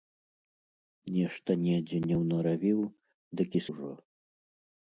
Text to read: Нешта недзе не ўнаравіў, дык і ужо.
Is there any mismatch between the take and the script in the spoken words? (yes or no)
no